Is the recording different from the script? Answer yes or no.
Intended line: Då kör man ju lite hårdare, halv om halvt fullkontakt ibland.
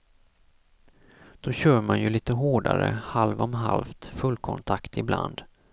no